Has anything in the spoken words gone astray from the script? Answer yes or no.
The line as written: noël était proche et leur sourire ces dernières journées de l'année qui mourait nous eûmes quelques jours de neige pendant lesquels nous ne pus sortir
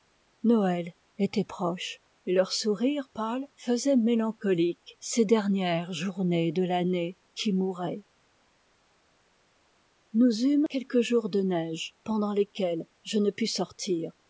yes